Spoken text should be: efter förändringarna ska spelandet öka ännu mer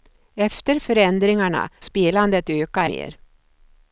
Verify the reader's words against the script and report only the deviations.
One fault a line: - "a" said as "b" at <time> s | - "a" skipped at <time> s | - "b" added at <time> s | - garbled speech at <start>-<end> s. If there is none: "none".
- "ska" skipped at 1.7 s
- "ännu" skipped at 2.8 s